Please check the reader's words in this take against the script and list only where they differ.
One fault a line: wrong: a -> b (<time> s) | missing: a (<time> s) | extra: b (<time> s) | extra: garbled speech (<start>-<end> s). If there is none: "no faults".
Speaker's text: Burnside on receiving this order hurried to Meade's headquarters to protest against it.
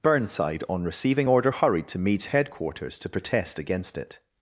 missing: this (1.3 s)